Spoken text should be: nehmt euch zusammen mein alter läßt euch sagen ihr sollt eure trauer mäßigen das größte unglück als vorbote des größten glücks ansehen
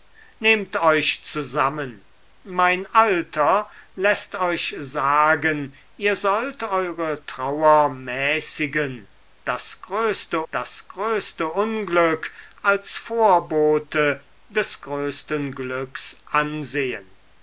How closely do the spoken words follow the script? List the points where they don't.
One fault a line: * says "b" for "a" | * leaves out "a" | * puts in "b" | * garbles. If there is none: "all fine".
* puts in "das größte"